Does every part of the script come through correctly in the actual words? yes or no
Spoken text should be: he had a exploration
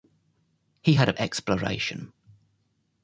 yes